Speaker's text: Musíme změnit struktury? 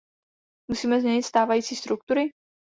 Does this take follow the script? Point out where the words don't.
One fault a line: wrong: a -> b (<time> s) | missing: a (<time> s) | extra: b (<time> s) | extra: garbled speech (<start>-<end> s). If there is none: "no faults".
extra: stávající (1.2 s)